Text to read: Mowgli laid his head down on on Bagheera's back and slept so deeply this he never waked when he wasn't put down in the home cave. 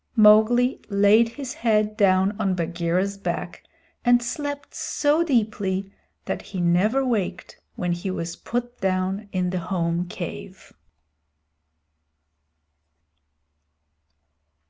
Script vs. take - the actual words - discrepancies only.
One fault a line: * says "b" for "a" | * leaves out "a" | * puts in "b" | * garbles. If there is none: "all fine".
* leaves out "on"
* says "that" for "this"
* says "was" for "wasn't"